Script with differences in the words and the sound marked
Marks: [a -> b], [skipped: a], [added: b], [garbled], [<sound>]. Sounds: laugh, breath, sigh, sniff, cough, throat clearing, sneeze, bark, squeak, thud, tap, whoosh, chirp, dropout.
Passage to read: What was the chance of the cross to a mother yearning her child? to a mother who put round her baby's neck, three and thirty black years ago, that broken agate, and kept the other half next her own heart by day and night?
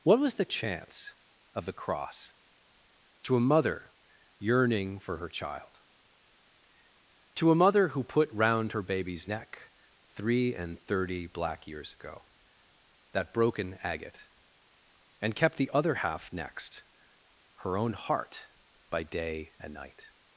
What was the chance of the cross to a mother yearning [added: for] her child? to a mother who put round her baby's neck, three and thirty black years ago, that broken agate, and kept the other half next her own heart by day and night?